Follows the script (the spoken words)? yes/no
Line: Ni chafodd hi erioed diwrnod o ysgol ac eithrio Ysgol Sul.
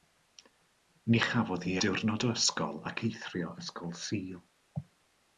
no